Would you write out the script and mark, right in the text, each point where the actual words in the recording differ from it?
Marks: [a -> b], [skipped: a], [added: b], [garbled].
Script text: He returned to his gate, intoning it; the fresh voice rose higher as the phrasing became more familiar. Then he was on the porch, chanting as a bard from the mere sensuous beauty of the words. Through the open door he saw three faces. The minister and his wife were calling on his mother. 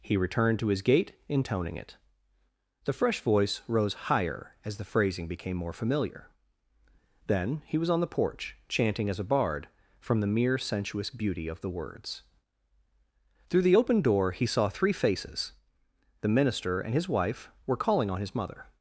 He returned to his gate, intoning it; the fresh voice rose higher as the phrasing became more familiar. Then he was on the porch, chanting as a bard from the mere sensuous beauty of the words. Through the open door he saw three faces. The minister and his wife were calling on his mother.